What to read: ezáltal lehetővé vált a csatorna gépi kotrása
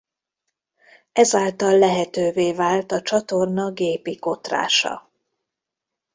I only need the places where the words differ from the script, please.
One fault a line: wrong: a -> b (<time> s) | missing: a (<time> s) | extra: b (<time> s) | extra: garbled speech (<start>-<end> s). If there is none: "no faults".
no faults